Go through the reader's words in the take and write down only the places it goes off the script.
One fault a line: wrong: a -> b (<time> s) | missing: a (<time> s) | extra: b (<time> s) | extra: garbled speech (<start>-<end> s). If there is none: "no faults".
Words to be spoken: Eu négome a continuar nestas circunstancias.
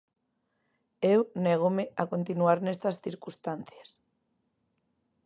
no faults